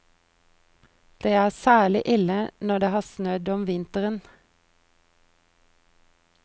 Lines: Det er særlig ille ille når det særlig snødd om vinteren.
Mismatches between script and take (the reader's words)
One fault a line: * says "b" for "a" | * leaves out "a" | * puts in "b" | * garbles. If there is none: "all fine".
* leaves out "ille"
* says "har" for "særlig"